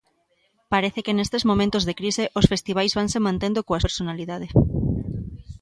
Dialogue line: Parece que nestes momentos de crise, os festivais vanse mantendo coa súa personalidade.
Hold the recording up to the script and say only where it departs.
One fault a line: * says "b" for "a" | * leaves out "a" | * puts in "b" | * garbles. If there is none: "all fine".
* leaves out "súa"